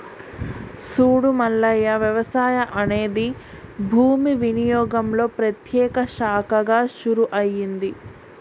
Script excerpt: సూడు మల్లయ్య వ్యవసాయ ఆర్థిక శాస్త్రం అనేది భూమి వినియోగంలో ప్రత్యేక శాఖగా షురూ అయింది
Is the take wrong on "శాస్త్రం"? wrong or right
wrong